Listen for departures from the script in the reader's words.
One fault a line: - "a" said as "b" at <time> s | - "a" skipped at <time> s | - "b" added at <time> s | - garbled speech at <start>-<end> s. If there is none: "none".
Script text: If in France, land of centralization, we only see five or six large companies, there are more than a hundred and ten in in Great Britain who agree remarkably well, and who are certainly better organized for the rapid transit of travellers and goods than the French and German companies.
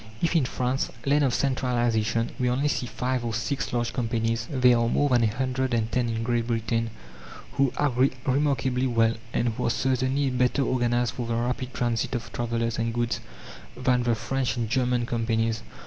- "in" skipped at 6.2 s